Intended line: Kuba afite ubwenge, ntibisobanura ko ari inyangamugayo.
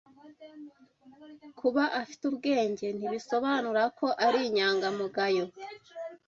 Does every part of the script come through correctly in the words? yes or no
yes